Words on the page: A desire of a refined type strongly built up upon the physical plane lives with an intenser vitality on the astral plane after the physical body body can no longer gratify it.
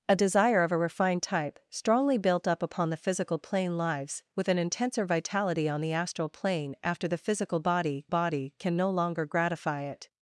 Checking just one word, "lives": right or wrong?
right